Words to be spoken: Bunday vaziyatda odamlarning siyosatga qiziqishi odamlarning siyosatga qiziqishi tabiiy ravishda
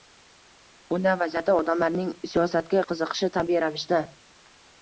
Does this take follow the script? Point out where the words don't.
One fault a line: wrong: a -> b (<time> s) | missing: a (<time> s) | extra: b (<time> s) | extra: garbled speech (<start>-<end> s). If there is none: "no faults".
missing: odamlarning siyosatga qiziqishi (3.3 s)